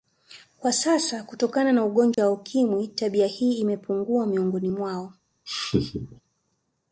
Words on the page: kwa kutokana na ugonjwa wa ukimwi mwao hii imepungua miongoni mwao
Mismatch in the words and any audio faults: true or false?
true